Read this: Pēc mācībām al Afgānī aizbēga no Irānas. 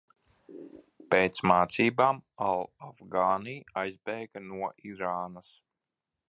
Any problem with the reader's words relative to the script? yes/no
no